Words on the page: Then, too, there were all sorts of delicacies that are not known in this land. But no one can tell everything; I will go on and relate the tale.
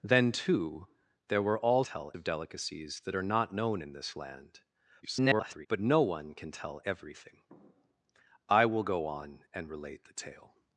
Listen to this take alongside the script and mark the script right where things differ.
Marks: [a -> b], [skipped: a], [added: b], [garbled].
Then, too, there were all [sorts -> tell] of delicacies that are not known in this land. [garbled] But no one can tell everything; I will go on and relate the tale.